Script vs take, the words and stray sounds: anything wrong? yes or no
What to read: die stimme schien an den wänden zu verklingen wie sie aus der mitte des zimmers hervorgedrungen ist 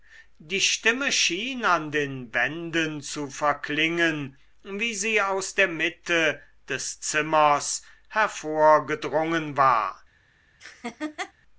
yes